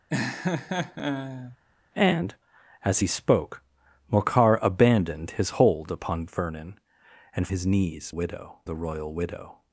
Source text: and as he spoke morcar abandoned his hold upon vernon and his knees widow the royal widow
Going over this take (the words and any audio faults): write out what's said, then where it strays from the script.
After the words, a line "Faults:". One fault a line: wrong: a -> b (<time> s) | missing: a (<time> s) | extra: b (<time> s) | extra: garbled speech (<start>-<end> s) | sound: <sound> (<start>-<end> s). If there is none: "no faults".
and as he spoke morcar abandoned his hold upon vernon and his knees widow the royal widow
Faults:
sound: laugh (0.1-1.6 s)